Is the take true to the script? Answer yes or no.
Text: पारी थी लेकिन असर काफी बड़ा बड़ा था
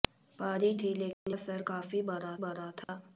yes